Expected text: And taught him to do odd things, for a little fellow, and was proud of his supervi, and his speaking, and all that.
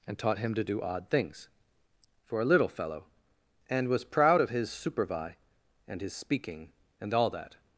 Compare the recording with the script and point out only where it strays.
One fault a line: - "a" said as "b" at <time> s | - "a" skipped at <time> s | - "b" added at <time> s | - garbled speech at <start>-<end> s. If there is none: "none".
none